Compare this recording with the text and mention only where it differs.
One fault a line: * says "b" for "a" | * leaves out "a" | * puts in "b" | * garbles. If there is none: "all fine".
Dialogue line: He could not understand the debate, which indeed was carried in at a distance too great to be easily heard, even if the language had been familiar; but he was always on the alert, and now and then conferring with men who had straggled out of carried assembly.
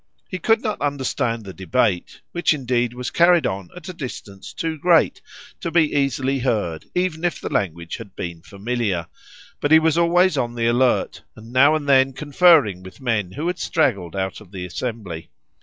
* says "on" for "in"
* says "the" for "carried"